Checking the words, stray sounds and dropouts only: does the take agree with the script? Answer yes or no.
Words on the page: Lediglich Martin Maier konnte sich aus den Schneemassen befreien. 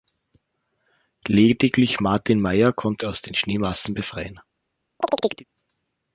no